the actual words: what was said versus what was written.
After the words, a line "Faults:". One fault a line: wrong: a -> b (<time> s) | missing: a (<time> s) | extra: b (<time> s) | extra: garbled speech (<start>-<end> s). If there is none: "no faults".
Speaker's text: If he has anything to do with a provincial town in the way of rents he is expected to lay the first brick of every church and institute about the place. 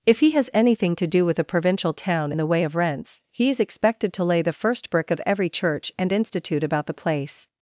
If he has anything to do with a provincial town the way of rents he is expected to lay the first brick of every church and institute about the place.
Faults:
missing: in (2.3 s)